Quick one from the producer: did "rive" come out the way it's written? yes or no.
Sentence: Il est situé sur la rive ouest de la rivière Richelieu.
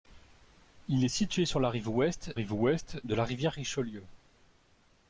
yes